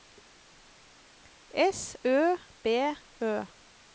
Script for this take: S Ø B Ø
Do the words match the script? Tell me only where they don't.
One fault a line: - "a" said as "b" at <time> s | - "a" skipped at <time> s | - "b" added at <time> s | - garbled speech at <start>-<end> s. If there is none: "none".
none